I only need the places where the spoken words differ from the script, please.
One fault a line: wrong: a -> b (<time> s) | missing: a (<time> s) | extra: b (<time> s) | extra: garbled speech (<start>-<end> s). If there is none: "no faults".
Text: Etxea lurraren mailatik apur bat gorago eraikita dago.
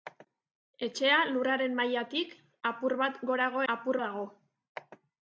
wrong: eraikita -> apur (3.7 s)